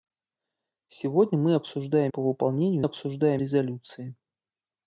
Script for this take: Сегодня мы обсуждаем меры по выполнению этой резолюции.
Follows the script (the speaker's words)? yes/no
no